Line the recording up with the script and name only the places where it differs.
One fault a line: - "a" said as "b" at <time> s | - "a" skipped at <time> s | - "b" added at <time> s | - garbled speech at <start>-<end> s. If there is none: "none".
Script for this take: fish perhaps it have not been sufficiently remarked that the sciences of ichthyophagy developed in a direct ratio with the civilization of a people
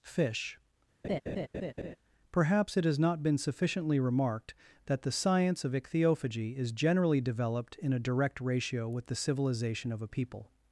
- "have" said as "has" at 2.8 s
- "sciences" said as "science" at 5.1 s
- "is generally" added at 6.6 s